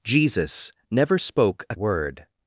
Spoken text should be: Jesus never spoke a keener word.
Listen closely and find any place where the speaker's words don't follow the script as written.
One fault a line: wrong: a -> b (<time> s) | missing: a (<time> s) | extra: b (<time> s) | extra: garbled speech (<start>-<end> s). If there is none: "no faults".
missing: keener (1.7 s)